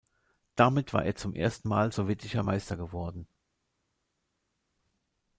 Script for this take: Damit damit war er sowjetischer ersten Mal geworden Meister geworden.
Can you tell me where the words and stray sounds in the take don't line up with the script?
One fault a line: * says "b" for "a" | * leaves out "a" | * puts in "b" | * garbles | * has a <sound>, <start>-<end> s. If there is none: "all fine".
* leaves out "damit"
* says "zum" for "sowjetischer"
* says "sowjetischer" for "geworden"